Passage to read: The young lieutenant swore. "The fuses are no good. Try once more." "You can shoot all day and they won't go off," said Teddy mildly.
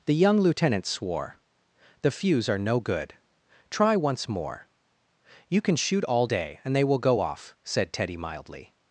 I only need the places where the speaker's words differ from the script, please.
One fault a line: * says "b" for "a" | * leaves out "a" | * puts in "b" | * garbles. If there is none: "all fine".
* says "fuse" for "fuses"
* says "will" for "won't"